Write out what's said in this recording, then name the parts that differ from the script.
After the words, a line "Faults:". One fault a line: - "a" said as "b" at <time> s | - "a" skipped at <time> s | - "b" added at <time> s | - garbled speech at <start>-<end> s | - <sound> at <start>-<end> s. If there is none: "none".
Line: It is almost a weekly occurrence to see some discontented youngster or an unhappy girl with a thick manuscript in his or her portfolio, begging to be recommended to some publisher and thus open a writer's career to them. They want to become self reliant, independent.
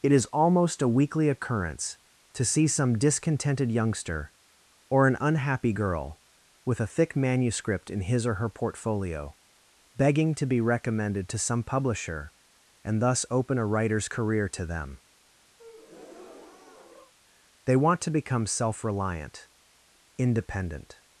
It is almost a weekly occurrence to see some discontented youngster or an unhappy girl with a thick manuscript in his or her portfolio, begging to be recommended to some publisher and thus open a writer's career to them. They want to become self reliant, independent.
Faults:
- breath at 15.6-17.1 s